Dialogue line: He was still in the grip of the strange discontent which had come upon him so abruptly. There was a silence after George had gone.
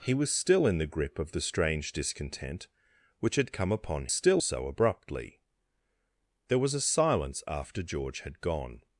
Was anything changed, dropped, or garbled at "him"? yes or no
yes